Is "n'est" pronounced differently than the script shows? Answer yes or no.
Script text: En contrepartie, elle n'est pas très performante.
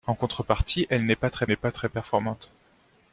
no